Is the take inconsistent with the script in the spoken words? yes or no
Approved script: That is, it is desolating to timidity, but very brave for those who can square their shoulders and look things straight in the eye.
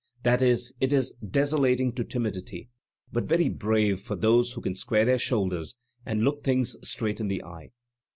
no